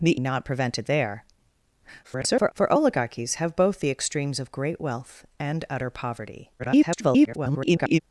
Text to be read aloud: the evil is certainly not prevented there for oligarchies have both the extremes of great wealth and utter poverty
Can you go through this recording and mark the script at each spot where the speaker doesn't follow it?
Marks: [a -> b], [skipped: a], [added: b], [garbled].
the [skipped: evil is certainly] not prevented there [garbled] for oligarchies have both the extremes of great wealth and utter poverty [garbled]